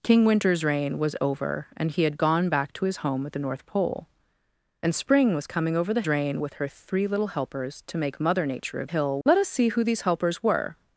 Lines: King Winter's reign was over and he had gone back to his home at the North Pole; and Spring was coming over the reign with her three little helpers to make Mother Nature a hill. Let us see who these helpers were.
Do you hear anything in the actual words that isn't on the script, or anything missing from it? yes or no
no